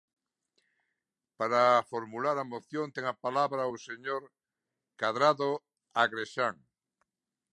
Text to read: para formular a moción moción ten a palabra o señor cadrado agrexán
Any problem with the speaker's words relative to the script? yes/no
yes